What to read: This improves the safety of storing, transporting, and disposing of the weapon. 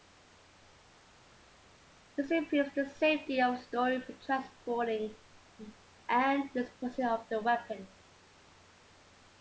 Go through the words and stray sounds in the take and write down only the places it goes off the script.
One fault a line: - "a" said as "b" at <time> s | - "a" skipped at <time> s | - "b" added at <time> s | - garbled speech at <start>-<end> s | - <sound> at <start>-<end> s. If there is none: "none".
none